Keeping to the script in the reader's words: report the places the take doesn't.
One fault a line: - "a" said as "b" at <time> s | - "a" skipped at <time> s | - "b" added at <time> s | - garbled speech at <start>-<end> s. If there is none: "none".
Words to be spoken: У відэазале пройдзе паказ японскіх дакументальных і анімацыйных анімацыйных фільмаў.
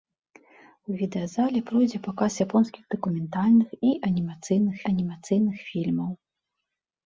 none